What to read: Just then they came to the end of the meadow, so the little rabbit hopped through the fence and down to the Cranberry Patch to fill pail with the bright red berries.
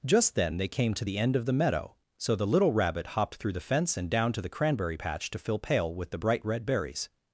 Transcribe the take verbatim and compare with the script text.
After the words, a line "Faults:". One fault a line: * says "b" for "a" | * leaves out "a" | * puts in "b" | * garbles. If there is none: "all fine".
Just then they came to the end of the meadow, so the little rabbit hopped through the fence and down to the Cranberry Patch to fill pail with the bright red berries.
Faults:
all fine